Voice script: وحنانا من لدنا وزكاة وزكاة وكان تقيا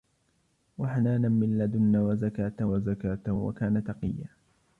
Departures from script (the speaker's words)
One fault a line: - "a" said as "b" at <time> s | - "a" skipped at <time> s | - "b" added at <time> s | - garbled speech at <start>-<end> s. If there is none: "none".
none